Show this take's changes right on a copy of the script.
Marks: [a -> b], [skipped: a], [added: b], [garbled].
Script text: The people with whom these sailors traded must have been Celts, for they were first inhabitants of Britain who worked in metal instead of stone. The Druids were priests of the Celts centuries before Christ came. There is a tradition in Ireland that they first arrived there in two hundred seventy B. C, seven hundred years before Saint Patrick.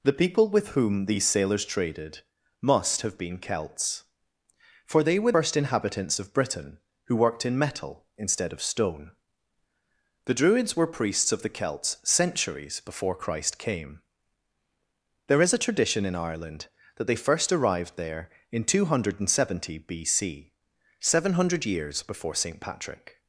The people with whom these sailors traded must have been Celts, for they were first inhabitants of Britain who worked in metal instead of stone. The Druids were priests of the Celts centuries before Christ came. There is a tradition in Ireland that they first arrived there in two hundred seventy B. C, seven hundred years before Saint Patrick.